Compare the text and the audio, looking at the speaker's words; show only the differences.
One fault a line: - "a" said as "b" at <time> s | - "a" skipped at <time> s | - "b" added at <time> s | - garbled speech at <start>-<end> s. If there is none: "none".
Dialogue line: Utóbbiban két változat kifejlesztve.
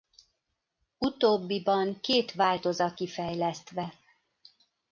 none